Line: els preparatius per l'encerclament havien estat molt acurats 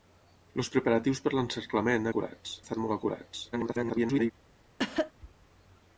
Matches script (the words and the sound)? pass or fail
fail